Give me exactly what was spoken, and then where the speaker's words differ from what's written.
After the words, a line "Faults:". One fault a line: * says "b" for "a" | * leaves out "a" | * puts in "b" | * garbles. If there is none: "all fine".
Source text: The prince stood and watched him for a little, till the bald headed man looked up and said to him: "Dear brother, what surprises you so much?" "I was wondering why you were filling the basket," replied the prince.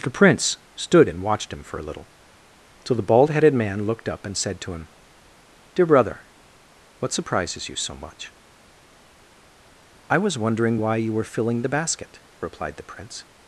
The prince stood and watched him for a little, till the bald headed man looked up and said to him: "Dear brother, what surprises you so much?" "I was wondering why you were filling the basket," replied the prince.
Faults:
all fine